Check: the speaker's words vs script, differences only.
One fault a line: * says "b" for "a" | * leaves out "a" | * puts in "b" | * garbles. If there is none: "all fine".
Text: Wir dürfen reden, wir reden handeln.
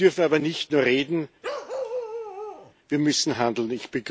* puts in "aber nicht nur"
* says "müssen" for "reden"